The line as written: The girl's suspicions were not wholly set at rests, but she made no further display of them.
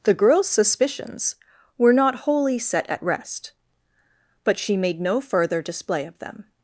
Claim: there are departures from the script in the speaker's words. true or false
true